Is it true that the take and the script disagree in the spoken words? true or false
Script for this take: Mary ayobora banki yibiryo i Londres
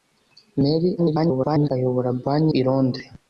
true